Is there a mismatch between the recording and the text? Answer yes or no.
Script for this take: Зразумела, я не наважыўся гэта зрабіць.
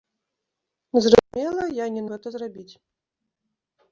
yes